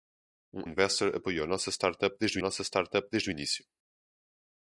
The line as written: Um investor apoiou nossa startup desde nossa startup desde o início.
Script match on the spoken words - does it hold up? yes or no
yes